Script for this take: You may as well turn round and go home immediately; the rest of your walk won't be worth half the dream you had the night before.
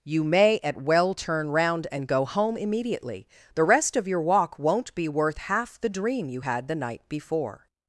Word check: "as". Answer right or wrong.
wrong